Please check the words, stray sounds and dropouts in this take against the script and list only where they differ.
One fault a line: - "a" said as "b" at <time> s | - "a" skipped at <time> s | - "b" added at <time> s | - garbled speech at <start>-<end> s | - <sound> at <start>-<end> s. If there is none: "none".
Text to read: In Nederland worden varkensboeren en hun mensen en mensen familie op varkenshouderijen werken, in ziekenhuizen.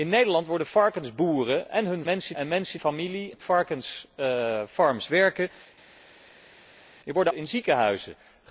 none